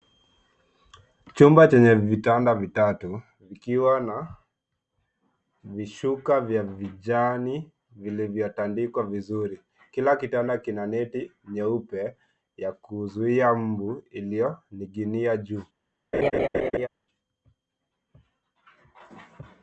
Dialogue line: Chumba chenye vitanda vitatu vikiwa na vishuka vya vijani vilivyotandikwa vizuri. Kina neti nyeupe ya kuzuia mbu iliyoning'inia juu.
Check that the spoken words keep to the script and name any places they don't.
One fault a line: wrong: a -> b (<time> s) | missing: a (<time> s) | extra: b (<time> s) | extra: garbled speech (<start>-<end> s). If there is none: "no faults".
extra: Kila kitanda (9.9 s)